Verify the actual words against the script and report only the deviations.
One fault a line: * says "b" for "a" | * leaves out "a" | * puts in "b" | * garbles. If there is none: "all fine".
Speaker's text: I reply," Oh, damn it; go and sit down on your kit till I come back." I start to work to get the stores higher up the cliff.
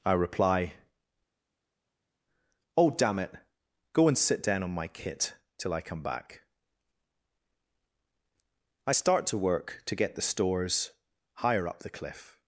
* says "my" for "your"